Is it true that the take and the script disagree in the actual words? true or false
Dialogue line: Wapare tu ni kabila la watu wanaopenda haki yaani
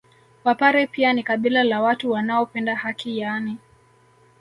true